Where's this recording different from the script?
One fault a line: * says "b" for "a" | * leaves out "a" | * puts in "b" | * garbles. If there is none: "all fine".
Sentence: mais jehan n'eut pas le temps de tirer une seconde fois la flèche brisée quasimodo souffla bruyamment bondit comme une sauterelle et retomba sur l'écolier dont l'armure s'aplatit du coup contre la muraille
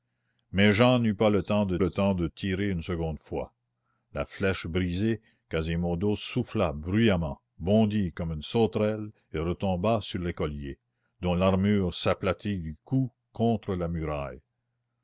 * puts in "le temps de"